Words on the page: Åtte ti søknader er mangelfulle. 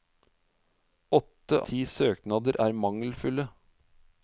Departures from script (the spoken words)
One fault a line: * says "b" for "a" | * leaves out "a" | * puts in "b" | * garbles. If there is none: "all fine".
all fine